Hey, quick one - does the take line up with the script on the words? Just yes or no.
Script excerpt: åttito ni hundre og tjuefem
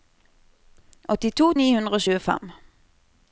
yes